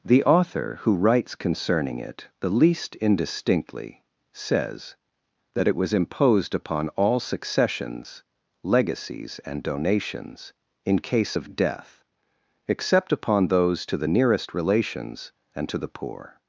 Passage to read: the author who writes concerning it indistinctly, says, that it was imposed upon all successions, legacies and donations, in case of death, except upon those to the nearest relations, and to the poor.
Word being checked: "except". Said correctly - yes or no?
yes